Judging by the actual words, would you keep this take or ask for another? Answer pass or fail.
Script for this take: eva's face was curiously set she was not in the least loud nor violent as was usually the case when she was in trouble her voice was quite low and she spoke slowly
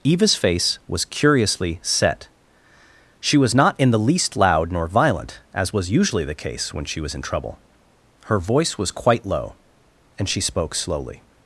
pass